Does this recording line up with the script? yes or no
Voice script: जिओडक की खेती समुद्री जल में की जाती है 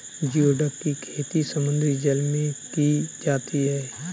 yes